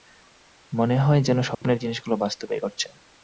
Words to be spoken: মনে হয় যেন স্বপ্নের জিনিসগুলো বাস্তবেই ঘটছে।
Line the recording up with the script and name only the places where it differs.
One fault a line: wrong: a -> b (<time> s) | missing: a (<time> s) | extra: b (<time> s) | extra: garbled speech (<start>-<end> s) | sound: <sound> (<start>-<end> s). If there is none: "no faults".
sound: dropout (1.5-1.6 s)